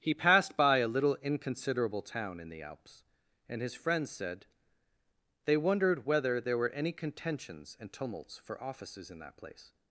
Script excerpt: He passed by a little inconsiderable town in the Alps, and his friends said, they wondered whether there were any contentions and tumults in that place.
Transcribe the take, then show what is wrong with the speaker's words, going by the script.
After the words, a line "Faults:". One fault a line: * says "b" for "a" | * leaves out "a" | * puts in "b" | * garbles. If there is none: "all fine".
He passed by a little inconsiderable town in the Alps, and his friends said, they wondered whether there were any contentions and tumults for offices in that place.
Faults:
* puts in "for offices"